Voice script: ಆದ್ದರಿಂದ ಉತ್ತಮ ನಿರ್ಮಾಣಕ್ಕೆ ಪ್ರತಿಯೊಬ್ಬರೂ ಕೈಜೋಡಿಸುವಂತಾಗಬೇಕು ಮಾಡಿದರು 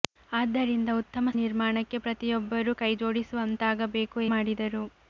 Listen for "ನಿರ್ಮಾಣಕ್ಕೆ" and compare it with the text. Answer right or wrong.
right